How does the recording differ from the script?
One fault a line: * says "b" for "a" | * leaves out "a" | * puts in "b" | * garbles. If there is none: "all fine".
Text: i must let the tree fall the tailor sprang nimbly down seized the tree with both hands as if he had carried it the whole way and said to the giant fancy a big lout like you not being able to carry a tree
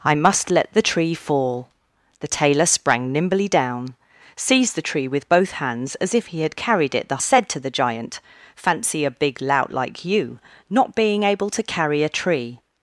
* leaves out "whole way and"